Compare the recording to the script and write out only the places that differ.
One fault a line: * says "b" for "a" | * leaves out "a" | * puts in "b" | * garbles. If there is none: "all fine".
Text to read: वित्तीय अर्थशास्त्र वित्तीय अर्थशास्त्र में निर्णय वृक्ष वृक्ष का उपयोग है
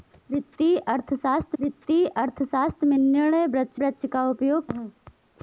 all fine